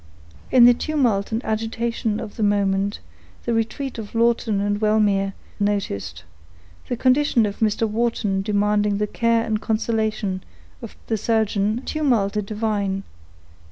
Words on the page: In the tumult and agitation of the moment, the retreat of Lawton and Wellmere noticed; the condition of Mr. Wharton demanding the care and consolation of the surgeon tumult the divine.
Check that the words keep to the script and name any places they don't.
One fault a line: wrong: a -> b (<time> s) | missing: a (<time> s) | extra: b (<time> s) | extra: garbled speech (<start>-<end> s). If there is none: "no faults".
no faults